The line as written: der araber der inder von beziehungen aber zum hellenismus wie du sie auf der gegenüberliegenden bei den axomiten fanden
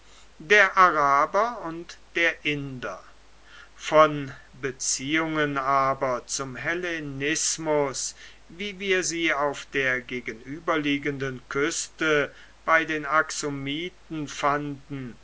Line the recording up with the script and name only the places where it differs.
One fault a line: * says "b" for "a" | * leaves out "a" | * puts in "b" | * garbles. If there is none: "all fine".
* puts in "und"
* says "wir" for "du"
* puts in "küste"